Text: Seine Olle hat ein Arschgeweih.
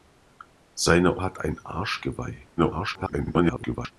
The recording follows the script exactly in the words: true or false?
false